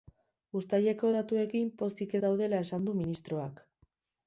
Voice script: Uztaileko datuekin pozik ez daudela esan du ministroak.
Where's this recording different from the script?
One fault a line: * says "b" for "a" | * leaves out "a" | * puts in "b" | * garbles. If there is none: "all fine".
all fine